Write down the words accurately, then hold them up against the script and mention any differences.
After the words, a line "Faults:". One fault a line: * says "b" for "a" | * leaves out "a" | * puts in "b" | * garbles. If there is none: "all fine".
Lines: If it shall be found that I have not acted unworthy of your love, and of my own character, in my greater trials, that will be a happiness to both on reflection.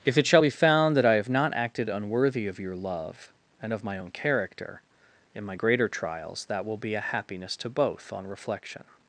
If it shall be found that I have not acted unworthy of your love, and of my own character, in my greater trials, that will be a happiness to both on reflection.
Faults:
all fine